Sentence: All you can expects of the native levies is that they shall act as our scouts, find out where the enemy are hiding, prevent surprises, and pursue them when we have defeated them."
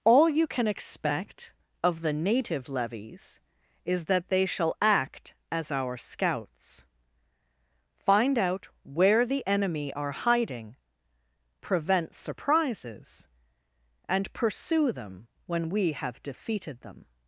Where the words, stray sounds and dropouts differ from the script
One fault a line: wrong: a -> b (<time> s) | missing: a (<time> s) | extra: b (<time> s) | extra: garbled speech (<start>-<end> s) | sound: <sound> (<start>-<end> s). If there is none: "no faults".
wrong: expects -> expect (0.7 s)